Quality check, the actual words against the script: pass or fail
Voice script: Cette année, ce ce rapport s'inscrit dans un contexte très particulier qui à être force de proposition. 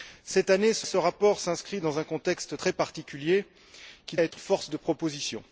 pass